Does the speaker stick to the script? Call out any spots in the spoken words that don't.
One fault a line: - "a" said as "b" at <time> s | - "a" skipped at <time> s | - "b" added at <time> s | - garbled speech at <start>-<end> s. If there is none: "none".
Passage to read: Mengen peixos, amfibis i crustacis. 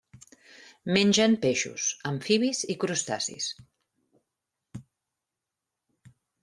none